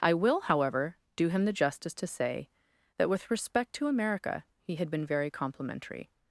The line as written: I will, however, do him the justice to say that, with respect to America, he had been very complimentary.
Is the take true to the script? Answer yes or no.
yes